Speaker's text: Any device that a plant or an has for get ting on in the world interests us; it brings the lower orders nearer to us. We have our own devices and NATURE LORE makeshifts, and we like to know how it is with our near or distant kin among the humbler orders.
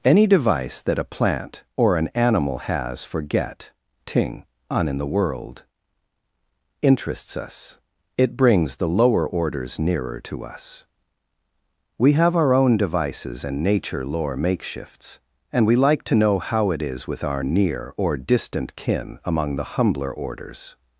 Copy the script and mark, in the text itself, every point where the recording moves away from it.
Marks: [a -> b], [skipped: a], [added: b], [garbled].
Any device that a plant or an [added: animal] has for get ting on in the world interests us; it brings the lower orders nearer to us. We have our own devices and NATURE LORE makeshifts, and we like to know how it is with our near or distant kin among the humbler orders.